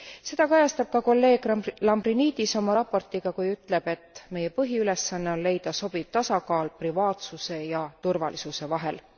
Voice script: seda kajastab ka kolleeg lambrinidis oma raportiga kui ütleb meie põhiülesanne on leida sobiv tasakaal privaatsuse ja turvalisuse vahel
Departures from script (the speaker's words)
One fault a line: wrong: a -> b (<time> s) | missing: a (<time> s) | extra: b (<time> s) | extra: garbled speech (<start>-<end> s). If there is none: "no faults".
extra: et (3.9 s)